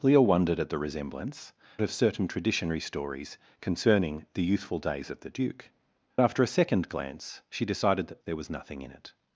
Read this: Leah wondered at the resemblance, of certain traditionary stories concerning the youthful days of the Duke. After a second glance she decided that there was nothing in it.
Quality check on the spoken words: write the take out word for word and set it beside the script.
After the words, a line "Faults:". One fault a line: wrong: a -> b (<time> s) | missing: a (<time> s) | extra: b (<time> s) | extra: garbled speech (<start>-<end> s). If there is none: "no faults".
Leah wondered at the resemblance, of certain traditionary stories concerning the youthful days of the Duke. After a second glance she decided that there was nothing in it.
Faults:
no faults